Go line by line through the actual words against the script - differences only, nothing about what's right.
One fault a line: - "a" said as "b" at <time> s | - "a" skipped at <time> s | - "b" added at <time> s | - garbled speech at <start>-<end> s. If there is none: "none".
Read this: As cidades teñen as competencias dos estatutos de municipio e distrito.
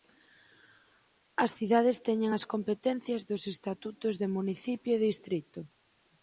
none